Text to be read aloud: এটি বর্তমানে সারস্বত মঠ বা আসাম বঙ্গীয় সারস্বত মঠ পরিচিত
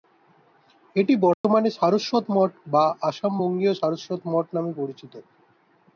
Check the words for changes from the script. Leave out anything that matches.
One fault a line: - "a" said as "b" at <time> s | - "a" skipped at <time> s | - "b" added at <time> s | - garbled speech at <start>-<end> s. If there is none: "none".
- "নামে" added at 4.6 s